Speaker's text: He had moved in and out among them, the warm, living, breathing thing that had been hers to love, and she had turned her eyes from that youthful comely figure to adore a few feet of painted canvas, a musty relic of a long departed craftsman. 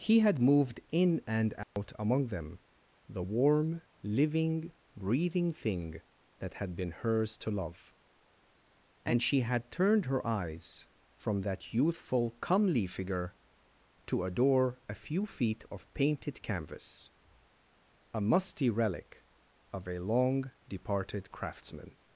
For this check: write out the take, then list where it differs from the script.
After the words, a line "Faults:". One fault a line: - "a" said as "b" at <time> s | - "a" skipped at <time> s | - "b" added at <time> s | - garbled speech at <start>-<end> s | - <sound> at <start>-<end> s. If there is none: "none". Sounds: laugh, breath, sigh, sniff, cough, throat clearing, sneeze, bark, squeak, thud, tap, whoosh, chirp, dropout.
He had moved in and out among them, the warm, living, breathing thing that had been hers to love, and she had turned her eyes from that youthful comely figure to adore a few feet of painted canvas, a musty relic of a long departed craftsman.
Faults:
- dropout at 1.6-1.8 s